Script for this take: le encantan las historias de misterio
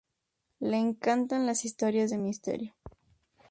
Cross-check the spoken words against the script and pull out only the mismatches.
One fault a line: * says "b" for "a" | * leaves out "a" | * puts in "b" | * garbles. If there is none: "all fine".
all fine